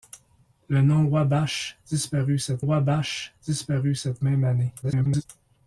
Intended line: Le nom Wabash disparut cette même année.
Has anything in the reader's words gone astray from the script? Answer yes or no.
yes